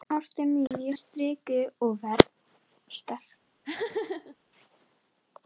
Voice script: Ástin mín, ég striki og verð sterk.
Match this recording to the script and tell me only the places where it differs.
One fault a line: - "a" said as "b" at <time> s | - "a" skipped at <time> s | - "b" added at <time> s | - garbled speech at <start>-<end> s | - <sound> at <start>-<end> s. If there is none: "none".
- dropout at 0.7-0.7 s
- laugh at 3.6-4.4 s